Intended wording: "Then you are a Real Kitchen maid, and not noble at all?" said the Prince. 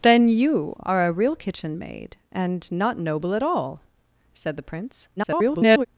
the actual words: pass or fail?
fail